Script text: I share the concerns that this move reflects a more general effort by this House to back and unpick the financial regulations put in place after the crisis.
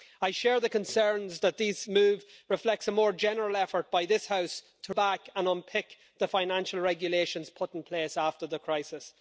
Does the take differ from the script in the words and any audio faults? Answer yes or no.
no